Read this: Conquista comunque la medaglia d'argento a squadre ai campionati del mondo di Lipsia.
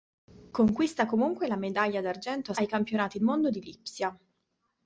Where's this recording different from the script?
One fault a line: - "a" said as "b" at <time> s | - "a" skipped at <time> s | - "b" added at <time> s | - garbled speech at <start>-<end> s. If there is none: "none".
- "squadre" skipped at 2.5 s
- "del" skipped at 3.2 s